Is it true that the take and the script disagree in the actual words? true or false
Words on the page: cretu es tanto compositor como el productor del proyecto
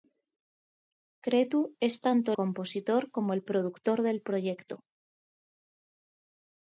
false